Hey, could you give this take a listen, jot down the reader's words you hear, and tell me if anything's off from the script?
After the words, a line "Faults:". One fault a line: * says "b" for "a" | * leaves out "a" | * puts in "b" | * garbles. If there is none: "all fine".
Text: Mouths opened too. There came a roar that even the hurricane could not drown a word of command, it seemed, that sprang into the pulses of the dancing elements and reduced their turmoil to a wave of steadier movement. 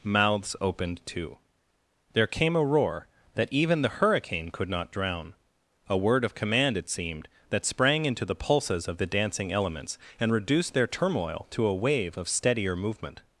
Mouths opened too. There came a roar that even the hurricane could not drown a word of command, it seemed, that sprang into the pulses of the dancing elements and reduced their turmoil to a wave of steadier movement.
Faults:
all fine